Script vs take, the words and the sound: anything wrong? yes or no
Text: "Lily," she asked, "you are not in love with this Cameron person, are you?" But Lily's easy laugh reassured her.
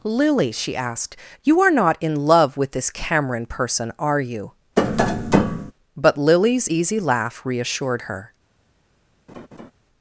yes